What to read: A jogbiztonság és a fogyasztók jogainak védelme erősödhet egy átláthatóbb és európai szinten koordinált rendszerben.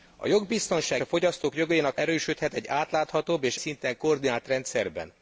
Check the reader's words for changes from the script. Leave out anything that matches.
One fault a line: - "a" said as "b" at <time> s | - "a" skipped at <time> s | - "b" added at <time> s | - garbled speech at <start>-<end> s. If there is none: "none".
- "és" skipped at 1.0 s
- "védelme" skipped at 2.0 s
- "európai" skipped at 3.6 s